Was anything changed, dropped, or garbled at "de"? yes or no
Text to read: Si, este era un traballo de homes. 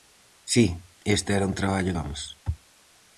yes